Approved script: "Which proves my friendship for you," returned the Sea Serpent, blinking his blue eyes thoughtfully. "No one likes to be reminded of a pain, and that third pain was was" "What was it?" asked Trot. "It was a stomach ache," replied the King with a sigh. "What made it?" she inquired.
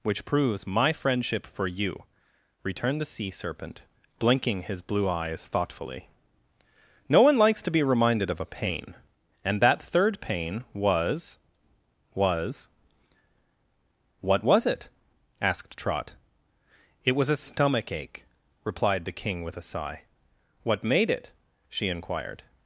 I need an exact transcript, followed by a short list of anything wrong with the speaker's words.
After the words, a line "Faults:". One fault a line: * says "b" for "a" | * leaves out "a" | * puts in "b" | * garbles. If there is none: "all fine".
"Which proves my friendship for you," returned the Sea Serpent, blinking his blue eyes thoughtfully. "No one likes to be reminded of a pain, and that third pain was was" "What was it?" asked Trot. "It was a stomach ache," replied the King with a sigh. "What made it?" she inquired.
Faults:
all fine